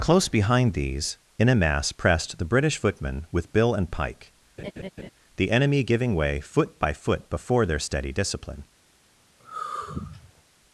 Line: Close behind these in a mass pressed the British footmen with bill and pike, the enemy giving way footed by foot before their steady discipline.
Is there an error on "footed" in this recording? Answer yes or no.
yes